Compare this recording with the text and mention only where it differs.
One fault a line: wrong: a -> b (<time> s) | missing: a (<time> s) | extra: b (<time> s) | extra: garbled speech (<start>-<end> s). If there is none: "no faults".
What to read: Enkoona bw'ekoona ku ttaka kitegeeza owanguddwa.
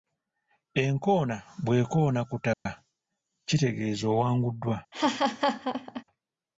no faults